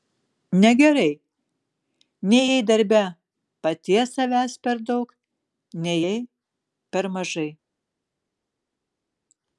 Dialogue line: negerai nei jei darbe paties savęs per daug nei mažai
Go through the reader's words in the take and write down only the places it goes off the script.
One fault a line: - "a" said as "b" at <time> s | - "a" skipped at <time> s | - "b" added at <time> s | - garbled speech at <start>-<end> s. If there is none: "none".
- "jei per" added at 6.0 s